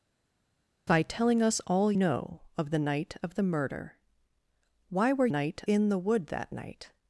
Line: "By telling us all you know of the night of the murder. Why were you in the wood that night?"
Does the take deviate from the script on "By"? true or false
false